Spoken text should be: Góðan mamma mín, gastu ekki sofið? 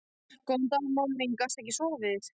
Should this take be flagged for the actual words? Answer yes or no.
yes